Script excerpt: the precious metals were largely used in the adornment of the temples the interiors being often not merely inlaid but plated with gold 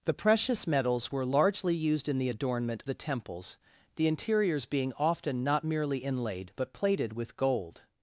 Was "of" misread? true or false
true